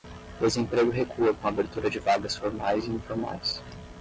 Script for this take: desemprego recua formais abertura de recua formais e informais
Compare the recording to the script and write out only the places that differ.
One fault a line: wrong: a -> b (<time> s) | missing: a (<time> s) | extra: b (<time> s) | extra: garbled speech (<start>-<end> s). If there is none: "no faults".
wrong: formais -> com (1.3 s)
wrong: recua -> vagas (2.0 s)